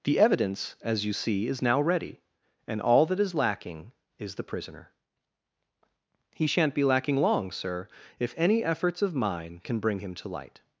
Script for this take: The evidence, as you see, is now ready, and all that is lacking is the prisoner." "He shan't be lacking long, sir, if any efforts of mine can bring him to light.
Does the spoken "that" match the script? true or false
true